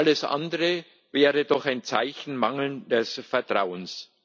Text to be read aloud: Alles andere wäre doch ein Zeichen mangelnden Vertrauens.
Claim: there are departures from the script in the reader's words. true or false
false